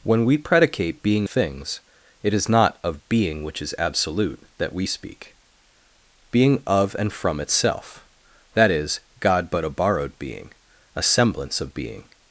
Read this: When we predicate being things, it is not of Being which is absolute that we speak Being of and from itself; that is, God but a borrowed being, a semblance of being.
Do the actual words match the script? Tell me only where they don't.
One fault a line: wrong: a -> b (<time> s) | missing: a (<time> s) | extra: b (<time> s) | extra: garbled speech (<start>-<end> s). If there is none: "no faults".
no faults